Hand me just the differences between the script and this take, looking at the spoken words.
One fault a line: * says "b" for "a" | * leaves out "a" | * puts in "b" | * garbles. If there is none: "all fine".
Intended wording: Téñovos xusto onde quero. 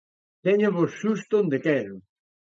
all fine